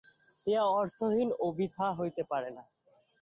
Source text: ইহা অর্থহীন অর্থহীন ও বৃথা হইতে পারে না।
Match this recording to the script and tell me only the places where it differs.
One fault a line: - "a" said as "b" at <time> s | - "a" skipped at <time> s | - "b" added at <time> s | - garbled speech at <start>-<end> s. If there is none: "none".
- "অর্থহীন" skipped at 1.3 s